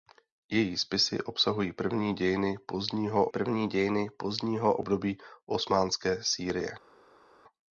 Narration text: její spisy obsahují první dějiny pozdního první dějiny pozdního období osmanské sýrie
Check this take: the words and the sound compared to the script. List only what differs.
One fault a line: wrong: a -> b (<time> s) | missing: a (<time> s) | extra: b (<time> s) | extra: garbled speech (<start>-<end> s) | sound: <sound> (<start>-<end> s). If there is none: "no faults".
no faults